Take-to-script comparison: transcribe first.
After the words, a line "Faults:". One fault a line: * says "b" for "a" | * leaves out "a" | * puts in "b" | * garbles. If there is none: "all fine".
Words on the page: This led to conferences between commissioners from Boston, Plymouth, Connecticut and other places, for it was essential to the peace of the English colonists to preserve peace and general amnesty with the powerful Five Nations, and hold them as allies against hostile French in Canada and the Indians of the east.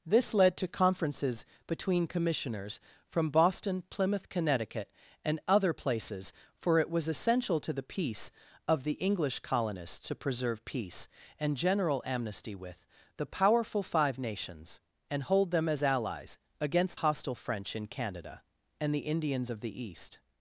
This led to conferences between commissioners from Boston, Plymouth, Connecticut and other places, for it was essential to the peace of the English colonists to preserve peace and general amnesty with the powerful Five Nations, and hold them as allies against hostile French in Canada and the Indians of the east.
Faults:
all fine